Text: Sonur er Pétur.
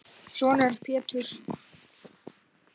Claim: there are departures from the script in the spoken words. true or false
false